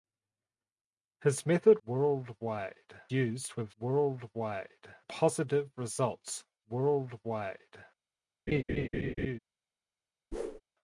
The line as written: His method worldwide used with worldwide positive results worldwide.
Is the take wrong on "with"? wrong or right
right